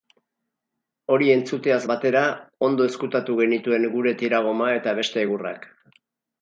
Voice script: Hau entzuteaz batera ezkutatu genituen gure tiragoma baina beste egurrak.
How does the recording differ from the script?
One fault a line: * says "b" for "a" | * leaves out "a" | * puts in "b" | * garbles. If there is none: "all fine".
* says "Hori" for "Hau"
* puts in "ondo"
* says "eta" for "baina"